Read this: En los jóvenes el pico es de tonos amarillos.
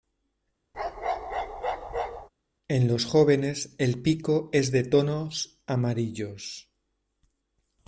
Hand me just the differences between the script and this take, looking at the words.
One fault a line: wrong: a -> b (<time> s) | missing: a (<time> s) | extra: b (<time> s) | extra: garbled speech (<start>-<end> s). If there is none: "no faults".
no faults